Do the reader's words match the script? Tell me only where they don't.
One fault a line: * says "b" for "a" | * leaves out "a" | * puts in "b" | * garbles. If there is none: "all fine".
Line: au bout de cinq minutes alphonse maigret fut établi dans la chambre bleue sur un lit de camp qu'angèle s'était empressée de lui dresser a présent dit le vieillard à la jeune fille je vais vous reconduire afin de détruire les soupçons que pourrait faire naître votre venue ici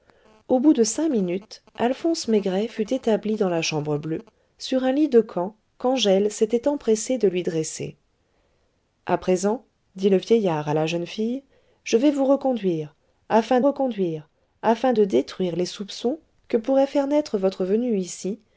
* puts in "reconduire afin"